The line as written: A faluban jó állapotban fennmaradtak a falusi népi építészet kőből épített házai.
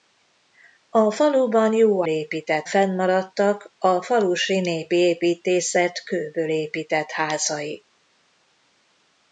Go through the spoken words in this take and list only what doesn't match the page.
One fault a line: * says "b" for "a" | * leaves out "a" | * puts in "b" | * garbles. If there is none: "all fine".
* says "épített" for "állapotban"